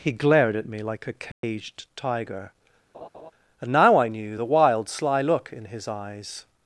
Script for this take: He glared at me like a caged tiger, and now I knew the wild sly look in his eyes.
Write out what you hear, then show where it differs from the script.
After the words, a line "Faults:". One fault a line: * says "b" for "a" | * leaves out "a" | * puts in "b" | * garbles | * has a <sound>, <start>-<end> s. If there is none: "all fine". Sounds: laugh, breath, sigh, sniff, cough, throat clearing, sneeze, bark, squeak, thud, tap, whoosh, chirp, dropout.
He glared at me like a caged tiger, and now I knew the wild sly look in his eyes.
Faults:
* has a dropout, 1.3-1.4 s
* has a laugh, 2.9-3.3 s